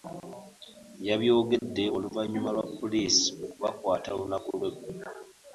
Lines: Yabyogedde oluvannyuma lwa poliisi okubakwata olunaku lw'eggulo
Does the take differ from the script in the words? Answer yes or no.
no